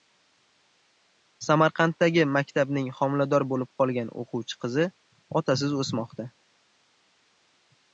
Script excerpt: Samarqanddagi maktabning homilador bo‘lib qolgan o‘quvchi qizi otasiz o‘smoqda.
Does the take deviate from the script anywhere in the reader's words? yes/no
no